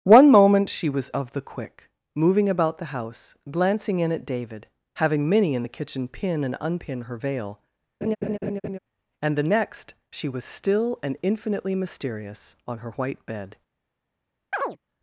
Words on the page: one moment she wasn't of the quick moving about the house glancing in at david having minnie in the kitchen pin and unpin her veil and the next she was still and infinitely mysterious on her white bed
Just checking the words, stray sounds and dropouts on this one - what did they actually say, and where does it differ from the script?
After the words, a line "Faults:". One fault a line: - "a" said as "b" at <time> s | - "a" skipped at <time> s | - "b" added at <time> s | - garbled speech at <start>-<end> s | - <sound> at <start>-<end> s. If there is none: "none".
one moment she was of the quick moving about the house glancing in at david having minnie in the kitchen pin and unpin her veil and the next she was still and infinitely mysterious on her white bed
Faults:
- "wasn't" said as "was" at 0.9 s
- laugh at 8.0-8.8 s
- chirp at 14.5-14.8 s